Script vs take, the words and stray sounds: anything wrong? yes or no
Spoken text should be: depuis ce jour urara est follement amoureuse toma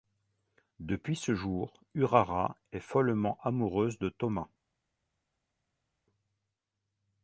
yes